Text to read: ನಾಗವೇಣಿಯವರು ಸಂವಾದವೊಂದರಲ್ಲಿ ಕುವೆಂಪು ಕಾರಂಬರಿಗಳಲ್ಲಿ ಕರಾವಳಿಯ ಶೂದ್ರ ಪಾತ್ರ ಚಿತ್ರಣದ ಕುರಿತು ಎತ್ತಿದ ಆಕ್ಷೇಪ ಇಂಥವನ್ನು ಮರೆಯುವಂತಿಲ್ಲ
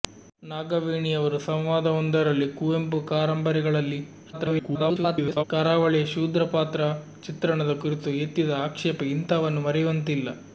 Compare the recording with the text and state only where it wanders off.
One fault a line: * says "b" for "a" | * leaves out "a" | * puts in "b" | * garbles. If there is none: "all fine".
* garbles